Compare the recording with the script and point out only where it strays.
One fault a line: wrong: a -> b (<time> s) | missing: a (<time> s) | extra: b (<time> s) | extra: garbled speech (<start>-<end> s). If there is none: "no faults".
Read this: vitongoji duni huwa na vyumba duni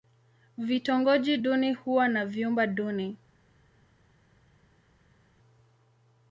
no faults